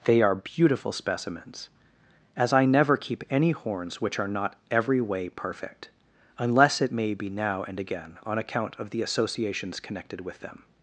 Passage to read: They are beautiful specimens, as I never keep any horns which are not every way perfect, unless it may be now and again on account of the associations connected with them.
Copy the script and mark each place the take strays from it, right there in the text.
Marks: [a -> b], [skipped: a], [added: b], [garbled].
They are beautiful specimens, as I never keep any horns which are not every way perfect, unless it may be now and again on account of the associations connected with them.